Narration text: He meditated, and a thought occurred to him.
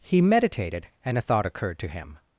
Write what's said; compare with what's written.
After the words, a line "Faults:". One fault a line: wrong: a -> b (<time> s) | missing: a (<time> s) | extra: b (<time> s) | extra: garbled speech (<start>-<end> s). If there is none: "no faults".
He meditated, and a thought occurred to him.
Faults:
no faults